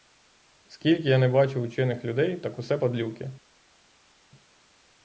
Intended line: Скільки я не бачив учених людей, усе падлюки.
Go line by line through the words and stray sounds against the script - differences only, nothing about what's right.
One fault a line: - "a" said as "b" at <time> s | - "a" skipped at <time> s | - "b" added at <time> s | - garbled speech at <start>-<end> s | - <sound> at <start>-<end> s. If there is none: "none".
- "так" added at 2.4 s